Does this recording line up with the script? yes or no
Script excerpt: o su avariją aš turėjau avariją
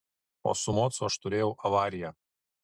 no